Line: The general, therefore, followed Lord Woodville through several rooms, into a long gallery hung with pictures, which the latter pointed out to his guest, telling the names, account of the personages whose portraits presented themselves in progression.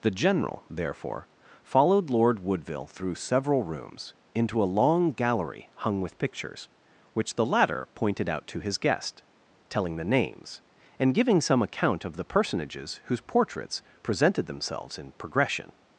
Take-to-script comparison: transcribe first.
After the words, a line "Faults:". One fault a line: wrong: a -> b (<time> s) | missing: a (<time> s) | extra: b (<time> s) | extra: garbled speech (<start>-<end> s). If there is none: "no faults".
The general, therefore, followed Lord Woodville through several rooms, into a long gallery hung with pictures, which the latter pointed out to his guest, telling the names, and giving some account of the personages whose portraits presented themselves in progression.
Faults:
extra: and giving some (11.0 s)